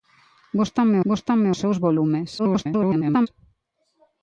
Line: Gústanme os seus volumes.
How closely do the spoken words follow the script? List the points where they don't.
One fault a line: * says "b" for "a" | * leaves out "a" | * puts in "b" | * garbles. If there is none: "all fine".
* puts in "gústanme"
* garbles